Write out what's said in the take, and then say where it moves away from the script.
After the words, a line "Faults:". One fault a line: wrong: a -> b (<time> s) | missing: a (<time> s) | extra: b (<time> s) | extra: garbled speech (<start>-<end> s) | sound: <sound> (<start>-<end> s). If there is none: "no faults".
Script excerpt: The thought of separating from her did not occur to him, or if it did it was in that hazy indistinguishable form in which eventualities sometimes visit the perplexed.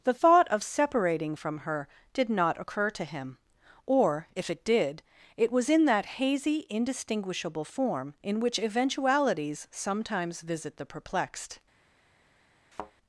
The thought of separating from her did not occur to him, or if it did it was in that hazy indistinguishable form in which eventualities sometimes visit the perplexed.
Faults:
sound: thud (12.7-12.9 s)